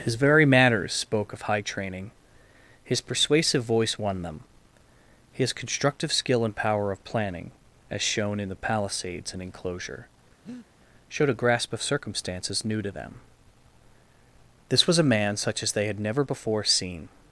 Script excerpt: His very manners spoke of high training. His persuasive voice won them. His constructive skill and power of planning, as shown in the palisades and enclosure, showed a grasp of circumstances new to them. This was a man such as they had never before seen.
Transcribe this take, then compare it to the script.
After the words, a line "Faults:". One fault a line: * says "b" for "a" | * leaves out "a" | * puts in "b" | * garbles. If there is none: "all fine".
His very manners spoke of high training. His persuasive voice won them. His constructive skill and power of planning, as shown in the palisades and enclosure, showed a grasp of circumstances new to them. This was a man such as they had never before seen.
Faults:
all fine